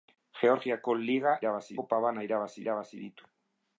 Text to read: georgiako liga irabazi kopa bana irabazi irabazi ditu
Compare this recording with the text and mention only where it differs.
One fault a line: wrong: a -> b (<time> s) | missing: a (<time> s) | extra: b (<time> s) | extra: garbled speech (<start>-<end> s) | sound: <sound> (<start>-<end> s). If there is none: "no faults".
no faults